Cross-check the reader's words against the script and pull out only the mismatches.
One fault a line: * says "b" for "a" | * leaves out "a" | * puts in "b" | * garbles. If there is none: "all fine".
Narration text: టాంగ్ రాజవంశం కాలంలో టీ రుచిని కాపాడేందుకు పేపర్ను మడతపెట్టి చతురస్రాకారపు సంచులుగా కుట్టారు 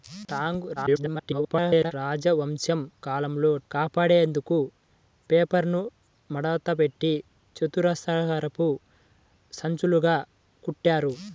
* garbles
* leaves out "టీ రుచిని"